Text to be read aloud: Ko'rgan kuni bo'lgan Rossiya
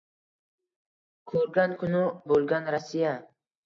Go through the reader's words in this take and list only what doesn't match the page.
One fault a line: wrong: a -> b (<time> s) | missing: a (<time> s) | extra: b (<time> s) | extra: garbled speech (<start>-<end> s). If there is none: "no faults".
no faults